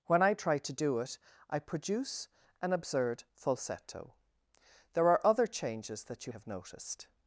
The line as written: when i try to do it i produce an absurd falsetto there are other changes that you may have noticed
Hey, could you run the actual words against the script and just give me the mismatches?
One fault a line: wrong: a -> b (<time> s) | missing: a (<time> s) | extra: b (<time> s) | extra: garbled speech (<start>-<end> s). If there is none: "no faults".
missing: may (6.3 s)